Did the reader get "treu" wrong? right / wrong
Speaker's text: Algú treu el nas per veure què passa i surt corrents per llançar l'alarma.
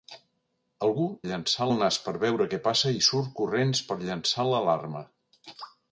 wrong